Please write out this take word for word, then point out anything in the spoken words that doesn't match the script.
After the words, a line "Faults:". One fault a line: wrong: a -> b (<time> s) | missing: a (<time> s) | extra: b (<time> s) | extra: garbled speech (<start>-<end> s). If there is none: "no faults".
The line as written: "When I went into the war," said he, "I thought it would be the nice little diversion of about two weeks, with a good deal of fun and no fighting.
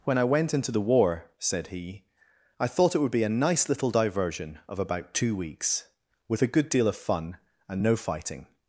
"When I went into the war," said he, "I thought it would be a nice little diversion of about two weeks, with a good deal of fun and no fighting.
Faults:
wrong: the -> a (3.2 s)